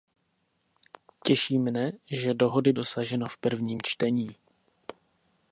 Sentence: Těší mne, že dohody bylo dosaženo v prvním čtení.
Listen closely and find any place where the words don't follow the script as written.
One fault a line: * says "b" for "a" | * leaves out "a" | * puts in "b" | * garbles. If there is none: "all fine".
* leaves out "bylo"